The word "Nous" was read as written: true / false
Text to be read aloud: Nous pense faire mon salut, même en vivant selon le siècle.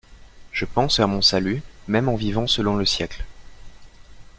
false